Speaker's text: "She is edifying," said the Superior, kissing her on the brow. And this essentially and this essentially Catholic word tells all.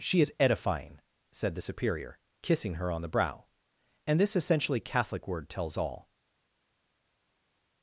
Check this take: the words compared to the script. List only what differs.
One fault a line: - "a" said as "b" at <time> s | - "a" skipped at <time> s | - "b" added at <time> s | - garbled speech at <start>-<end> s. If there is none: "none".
- "and this essentially" skipped at 4.8 s